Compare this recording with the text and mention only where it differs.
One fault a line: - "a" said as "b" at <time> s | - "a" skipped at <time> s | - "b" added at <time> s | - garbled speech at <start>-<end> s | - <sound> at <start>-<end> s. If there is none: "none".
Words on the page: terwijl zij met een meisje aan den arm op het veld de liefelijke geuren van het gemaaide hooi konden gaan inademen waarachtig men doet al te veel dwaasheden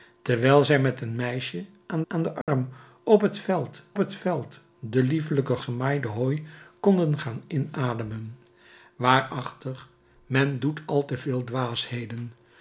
- "aan" added at 2.1 s
- dropout at 2.4-2.5 s
- "het veld" added at 4.0 s
- "geuren van het" skipped at 5.6 s